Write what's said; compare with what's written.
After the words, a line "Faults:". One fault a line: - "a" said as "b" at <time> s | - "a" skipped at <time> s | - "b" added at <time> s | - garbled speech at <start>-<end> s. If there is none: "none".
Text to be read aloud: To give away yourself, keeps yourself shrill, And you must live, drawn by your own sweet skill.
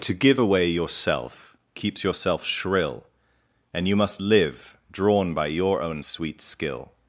To give away yourself, keeps yourself shrill, And you must live, drawn by your own sweet skill.
Faults:
none